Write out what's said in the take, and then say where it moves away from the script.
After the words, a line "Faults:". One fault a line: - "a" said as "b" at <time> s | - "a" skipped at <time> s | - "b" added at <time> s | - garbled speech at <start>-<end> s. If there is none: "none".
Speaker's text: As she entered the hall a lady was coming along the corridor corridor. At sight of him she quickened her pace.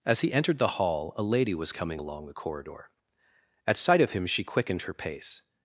As he entered the hall a lady was coming along the corridor. At sight of him she quickened her pace.
Faults:
- "she" said as "he" at 0.2 s
- "corridor" skipped at 2.9 s